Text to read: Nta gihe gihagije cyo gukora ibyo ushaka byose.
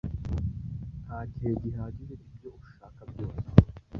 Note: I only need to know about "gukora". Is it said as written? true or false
false